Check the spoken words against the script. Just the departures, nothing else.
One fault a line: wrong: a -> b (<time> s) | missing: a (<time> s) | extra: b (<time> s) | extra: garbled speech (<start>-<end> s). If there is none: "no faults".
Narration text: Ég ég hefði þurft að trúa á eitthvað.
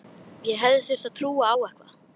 missing: ég (0.6 s)